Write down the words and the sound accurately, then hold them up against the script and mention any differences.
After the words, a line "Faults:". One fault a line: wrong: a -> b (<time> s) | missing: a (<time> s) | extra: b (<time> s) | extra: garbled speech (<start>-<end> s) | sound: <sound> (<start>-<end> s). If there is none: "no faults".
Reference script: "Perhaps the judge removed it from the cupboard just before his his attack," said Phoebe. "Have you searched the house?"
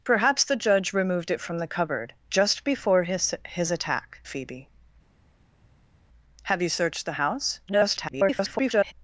"Perhaps the judge removed it from the cupboard just before his his attack," Phoebe. "Have you searched the house?" [garbled]
Faults:
missing: said (4.2 s)
extra: garbled speech (7.7-8.9 s)